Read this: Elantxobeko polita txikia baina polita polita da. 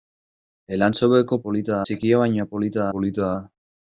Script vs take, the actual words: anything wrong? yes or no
no